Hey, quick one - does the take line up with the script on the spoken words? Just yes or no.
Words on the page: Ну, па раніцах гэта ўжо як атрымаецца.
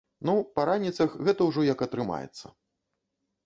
yes